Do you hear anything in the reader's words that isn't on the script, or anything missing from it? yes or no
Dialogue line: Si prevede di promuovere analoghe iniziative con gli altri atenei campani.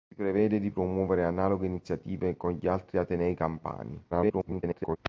yes